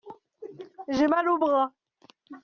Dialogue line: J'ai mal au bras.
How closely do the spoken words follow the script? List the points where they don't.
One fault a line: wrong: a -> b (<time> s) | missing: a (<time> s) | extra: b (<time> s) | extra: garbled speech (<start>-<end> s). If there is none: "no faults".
no faults